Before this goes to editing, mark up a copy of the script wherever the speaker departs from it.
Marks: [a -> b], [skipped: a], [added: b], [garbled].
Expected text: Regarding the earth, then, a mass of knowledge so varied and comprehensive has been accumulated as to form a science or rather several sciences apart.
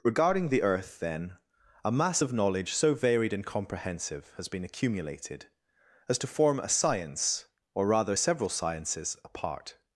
Regarding the earth, then, a mass of knowledge so varied and comprehensive has been accumulated as to form a science or rather several sciences apart.